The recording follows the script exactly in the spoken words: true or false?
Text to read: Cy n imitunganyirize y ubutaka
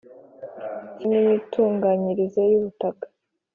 true